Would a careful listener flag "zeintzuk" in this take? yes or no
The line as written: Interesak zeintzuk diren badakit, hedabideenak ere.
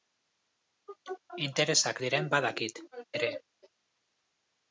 yes